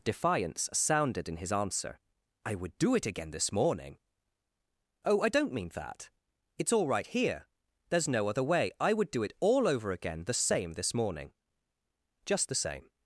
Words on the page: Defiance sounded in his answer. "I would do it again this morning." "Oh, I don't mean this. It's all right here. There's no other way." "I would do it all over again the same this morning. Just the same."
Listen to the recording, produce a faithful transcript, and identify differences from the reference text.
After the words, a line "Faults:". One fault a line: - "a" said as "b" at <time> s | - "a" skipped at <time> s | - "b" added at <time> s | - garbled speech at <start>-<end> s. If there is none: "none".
Defiance sounded in his answer. "I would do it again this morning." "Oh, I don't mean that. It's all right here. There's no other way." "I would do it all over again the same this morning. Just the same."
Faults:
- "this" said as "that" at 5.7 s